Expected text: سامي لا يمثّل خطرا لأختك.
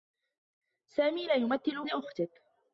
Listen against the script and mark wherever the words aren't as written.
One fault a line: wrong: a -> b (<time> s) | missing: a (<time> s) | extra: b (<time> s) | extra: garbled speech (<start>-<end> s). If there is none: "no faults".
missing: خطرا (1.9 s)